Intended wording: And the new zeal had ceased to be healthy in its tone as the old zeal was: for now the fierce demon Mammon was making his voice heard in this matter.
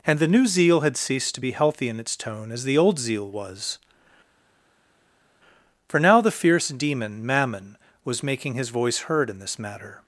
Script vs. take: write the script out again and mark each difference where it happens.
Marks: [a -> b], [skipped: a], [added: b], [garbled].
And the new zeal had ceased to be healthy in its tone as the old zeal was: for now the fierce demon Mammon was making his voice heard in this matter.